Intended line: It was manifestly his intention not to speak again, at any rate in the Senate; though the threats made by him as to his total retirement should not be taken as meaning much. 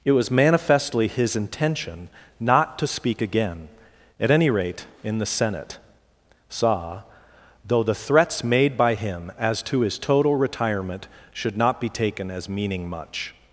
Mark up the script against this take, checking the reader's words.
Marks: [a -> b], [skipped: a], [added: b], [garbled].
It was manifestly his intention not to speak again, at any rate in the Senate; [added: saw] though the threats made by him as to his total retirement should not be taken as meaning much.